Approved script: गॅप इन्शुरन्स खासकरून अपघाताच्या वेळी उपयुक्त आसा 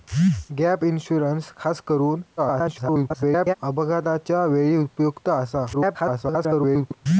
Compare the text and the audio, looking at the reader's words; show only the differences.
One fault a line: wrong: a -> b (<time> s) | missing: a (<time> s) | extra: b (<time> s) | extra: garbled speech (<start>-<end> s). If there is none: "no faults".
extra: garbled speech (2.4-3.5 s)
extra: garbled speech (5.7-7.1 s)